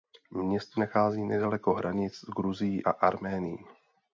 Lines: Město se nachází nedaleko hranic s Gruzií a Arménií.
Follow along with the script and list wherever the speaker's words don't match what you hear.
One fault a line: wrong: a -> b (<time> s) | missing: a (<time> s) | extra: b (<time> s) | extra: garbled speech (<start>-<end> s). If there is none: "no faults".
missing: se (0.8 s)